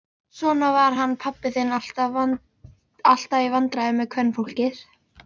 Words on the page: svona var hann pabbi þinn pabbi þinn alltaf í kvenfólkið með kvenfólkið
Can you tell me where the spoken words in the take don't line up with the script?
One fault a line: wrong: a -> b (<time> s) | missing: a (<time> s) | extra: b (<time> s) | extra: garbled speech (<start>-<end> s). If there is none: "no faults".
missing: pabbi þinn (1.7 s)
wrong: kvenfólkið -> vandræðum (3.5 s)